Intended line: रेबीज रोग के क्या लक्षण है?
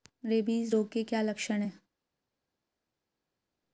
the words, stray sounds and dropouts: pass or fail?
pass